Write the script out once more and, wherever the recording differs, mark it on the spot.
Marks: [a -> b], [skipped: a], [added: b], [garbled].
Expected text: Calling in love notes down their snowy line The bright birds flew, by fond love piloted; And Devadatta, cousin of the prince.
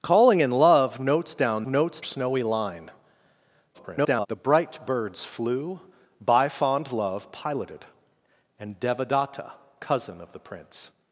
Calling in love notes down [their -> notes] snowy line [garbled] The bright birds flew, by fond love piloted; And Devadatta, cousin of the prince.